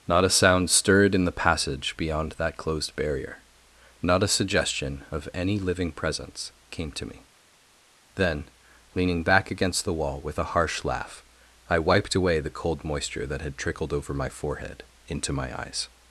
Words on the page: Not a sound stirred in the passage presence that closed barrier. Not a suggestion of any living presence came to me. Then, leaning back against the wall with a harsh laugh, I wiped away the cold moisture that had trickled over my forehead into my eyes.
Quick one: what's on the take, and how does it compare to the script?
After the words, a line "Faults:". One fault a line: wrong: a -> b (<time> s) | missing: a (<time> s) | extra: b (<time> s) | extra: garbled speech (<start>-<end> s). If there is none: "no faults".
Not a sound stirred in the passage beyond that closed barrier. Not a suggestion of any living presence came to me. Then, leaning back against the wall with a harsh laugh, I wiped away the cold moisture that had trickled over my forehead into my eyes.
Faults:
wrong: presence -> beyond (1.9 s)